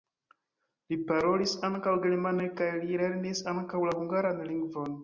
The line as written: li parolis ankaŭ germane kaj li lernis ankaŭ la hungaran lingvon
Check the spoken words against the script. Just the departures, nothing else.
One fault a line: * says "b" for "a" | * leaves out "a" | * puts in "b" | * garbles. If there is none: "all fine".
all fine